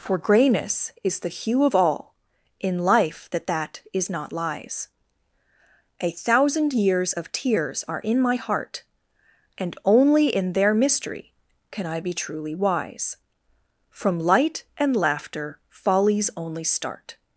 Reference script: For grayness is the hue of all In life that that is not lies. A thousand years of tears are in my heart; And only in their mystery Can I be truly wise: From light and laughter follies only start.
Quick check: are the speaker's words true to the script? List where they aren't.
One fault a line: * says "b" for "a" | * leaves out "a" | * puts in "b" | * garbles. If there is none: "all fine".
all fine